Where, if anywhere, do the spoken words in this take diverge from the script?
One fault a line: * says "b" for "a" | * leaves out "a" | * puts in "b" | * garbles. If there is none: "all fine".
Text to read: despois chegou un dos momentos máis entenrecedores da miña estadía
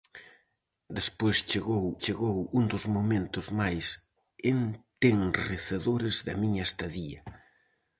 * puts in "chegou"